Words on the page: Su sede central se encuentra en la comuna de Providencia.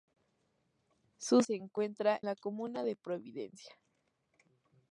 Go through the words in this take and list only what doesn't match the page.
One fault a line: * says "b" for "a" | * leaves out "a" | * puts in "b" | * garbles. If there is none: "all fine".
* leaves out "sede central"
* leaves out "en"